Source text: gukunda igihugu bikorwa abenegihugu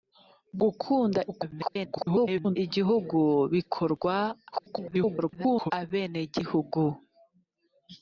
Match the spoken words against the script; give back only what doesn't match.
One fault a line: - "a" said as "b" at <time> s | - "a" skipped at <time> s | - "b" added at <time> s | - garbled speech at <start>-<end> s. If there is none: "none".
- garbled speech at 1.3-2.6 s
- garbled speech at 4.5-5.7 s